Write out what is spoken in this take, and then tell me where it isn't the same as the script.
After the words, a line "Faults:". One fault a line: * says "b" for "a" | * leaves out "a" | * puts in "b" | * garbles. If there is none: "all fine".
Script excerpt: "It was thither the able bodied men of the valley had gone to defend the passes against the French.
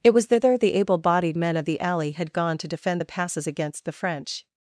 "It was thither the able bodied men of the alley had gone to defend the passes against the French.
Faults:
* says "alley" for "valley"